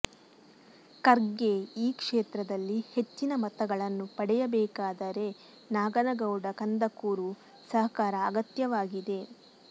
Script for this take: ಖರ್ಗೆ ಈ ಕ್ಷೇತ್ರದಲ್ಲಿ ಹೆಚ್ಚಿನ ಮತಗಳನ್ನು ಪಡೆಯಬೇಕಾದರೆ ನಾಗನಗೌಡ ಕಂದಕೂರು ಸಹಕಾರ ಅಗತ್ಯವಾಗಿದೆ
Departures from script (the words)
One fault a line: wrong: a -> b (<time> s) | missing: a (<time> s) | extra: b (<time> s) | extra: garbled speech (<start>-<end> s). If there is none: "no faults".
no faults